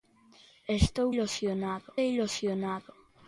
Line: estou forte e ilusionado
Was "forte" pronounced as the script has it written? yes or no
no